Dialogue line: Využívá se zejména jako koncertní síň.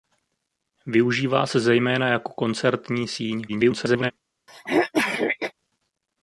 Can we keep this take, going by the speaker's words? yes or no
no